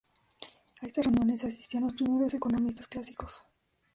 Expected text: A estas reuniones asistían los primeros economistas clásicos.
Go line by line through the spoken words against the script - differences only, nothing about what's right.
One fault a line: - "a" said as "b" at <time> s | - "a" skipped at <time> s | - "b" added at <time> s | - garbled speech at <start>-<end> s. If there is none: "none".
none